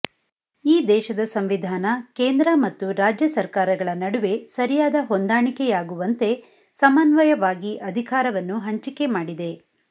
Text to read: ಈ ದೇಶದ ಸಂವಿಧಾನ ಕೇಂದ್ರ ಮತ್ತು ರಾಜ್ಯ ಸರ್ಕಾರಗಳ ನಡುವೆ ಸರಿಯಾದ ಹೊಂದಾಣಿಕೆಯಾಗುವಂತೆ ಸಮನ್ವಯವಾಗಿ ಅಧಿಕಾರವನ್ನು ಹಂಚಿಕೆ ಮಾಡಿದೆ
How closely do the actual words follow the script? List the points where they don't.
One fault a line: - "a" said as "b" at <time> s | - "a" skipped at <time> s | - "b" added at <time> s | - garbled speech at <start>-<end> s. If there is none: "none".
none